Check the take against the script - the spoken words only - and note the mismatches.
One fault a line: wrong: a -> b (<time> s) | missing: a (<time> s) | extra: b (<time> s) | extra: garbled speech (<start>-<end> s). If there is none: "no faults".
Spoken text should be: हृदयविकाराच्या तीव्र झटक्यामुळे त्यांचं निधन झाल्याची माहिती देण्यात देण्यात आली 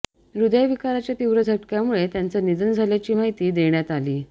missing: देण्यात (3.9 s)